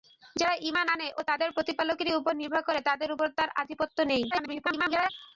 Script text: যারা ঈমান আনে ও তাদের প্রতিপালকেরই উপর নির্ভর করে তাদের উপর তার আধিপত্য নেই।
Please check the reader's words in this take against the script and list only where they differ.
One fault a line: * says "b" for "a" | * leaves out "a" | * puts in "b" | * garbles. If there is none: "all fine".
* garbles